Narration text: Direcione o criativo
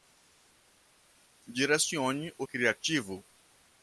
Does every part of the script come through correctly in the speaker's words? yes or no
yes